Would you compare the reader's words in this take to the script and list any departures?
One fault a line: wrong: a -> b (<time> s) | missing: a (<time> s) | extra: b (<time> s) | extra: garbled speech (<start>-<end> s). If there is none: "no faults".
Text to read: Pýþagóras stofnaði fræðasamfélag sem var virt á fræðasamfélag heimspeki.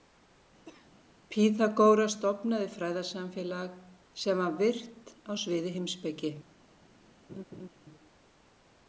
wrong: fræðasamfélag -> sviði (5.4 s)